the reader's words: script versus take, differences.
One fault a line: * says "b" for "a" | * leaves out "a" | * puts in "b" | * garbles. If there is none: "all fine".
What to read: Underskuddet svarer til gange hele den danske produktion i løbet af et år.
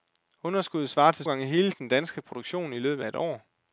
all fine